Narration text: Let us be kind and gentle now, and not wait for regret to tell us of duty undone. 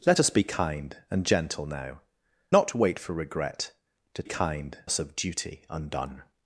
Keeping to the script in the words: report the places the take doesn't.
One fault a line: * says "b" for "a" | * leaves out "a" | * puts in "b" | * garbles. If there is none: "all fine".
* leaves out "and"
* says "kind" for "tell"